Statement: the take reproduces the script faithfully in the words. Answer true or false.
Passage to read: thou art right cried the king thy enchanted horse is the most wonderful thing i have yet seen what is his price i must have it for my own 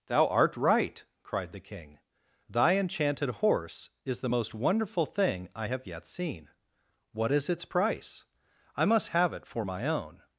false